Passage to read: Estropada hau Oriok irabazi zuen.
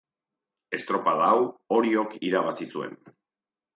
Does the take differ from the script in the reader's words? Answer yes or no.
no